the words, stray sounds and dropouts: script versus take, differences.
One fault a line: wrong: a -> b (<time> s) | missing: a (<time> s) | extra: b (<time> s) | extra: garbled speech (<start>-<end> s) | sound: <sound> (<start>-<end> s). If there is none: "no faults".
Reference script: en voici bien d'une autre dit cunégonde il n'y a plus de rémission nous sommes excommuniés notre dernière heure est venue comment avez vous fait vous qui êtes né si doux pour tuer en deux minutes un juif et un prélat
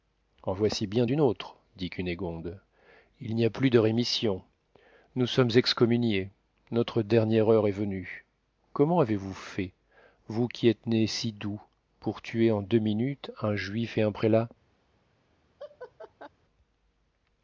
sound: laugh (15.6-16.3 s)